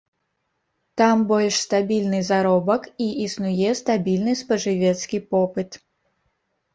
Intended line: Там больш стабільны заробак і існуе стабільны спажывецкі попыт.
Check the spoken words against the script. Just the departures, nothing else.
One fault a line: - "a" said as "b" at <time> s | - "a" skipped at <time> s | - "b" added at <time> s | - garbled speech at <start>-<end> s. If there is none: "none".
none